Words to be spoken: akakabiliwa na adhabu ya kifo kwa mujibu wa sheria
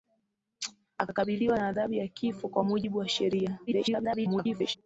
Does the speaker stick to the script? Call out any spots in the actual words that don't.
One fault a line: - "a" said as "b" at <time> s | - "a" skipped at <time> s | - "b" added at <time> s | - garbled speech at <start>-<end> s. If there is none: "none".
- garbled speech at 3.7-4.8 s